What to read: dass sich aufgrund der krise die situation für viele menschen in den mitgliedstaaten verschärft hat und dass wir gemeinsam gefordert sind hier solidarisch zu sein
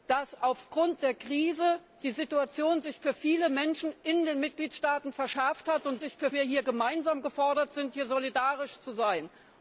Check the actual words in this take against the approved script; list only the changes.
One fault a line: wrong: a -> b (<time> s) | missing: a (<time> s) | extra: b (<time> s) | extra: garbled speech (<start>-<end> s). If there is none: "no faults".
wrong: dass -> für (6.0 s)